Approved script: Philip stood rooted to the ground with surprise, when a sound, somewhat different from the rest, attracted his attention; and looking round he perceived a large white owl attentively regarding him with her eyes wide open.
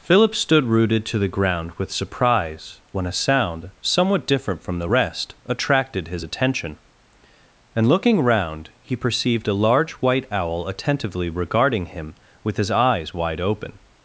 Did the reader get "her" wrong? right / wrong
wrong